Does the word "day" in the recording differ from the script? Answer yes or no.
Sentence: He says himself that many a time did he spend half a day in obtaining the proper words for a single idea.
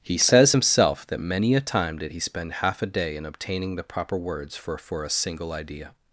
no